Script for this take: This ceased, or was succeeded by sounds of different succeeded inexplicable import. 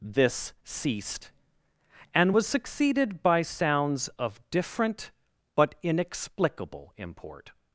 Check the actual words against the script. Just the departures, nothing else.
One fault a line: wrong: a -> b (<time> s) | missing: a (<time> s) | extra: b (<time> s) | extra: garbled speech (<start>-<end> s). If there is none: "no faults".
wrong: or -> and (2.1 s)
wrong: succeeded -> but (5.6 s)